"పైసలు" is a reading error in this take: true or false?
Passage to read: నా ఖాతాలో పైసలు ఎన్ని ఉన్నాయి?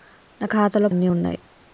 true